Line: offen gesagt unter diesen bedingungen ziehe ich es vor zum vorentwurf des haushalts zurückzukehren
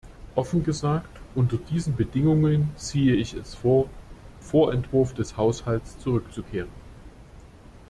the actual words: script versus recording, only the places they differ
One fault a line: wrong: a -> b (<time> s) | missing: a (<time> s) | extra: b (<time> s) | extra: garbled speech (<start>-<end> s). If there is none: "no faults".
missing: zum (3.9 s)